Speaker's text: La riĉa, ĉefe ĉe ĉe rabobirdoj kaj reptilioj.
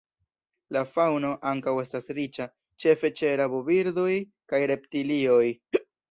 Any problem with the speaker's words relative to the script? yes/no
yes